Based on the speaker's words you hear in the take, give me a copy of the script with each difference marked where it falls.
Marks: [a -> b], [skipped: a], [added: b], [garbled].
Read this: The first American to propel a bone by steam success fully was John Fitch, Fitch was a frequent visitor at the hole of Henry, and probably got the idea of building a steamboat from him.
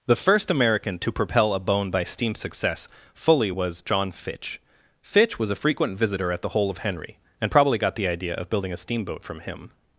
The first American to propel a bone by steam success fully was John Fitch, Fitch was a frequent visitor at the hole of Henry, and probably got the idea of building a steamboat from him.